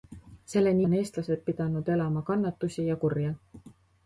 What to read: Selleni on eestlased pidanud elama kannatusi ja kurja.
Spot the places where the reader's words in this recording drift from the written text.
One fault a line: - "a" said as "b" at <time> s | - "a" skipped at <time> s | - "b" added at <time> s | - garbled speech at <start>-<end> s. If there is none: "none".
none